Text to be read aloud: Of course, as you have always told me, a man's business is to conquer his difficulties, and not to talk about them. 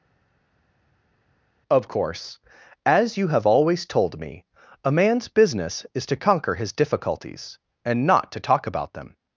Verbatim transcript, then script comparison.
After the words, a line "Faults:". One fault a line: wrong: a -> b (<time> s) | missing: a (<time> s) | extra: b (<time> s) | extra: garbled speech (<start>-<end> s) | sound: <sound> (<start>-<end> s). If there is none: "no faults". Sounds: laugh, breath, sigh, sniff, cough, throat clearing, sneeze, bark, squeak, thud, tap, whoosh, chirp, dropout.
Of course, as you have always told me, a man's business is to conquer his difficulties, and not to talk about them.
Faults:
no faults